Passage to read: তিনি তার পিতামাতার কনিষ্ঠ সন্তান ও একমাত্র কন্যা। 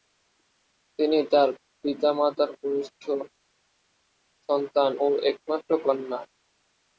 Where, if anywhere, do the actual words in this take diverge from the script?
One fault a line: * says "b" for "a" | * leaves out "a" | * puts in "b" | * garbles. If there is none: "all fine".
all fine